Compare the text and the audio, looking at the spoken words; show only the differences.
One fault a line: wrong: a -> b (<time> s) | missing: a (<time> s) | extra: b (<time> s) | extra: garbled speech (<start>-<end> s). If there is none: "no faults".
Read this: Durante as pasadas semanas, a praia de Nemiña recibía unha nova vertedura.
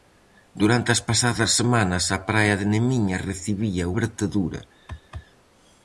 missing: unha nova (3.9 s)